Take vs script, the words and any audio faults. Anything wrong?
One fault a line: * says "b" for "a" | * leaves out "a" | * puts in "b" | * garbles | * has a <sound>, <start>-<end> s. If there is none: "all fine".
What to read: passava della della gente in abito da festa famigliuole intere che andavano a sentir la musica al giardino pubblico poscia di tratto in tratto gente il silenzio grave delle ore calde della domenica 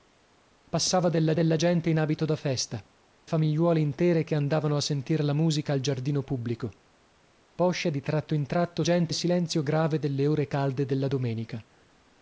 all fine